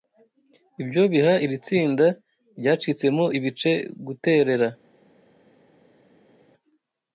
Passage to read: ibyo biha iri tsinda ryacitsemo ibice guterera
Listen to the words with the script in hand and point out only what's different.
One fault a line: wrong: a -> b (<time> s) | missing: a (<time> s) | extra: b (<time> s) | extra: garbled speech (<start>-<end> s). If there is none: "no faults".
no faults